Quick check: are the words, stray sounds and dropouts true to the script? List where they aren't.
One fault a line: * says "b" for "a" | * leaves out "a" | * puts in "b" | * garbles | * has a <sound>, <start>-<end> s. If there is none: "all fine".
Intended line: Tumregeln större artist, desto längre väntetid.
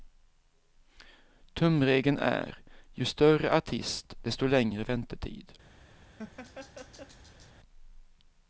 * puts in "är ju"
* has a laugh, 6.2-7.5 s